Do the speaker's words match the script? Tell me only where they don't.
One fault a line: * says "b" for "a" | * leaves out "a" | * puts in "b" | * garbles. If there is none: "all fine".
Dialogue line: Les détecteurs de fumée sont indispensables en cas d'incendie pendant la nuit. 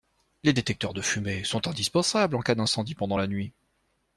all fine